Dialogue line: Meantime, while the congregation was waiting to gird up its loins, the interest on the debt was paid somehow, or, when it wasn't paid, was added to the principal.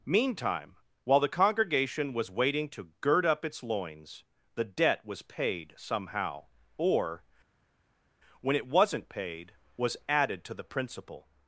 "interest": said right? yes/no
no